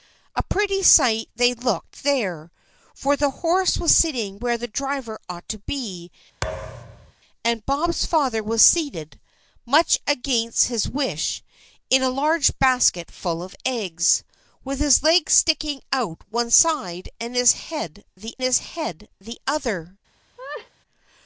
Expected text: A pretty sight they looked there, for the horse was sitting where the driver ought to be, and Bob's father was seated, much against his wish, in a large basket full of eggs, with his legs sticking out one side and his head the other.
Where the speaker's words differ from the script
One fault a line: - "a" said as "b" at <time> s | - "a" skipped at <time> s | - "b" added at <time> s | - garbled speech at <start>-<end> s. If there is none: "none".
- "his head the" added at 18.4 s